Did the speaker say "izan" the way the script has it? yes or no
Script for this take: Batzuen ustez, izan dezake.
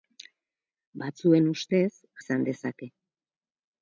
yes